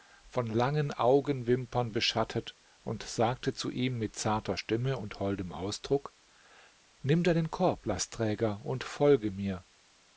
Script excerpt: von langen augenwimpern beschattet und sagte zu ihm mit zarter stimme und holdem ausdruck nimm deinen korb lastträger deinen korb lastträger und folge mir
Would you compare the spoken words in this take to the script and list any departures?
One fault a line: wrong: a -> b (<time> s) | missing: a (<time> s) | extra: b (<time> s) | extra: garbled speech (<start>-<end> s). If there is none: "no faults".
missing: deinen korb lastträger (8.6 s)